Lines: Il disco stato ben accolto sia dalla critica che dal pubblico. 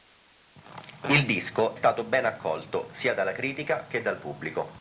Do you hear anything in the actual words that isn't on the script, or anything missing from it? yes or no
no